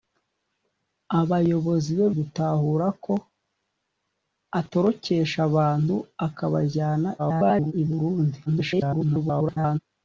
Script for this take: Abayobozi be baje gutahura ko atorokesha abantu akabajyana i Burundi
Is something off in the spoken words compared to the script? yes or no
yes